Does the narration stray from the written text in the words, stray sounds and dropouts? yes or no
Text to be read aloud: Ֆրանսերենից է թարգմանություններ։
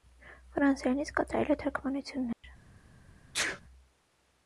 yes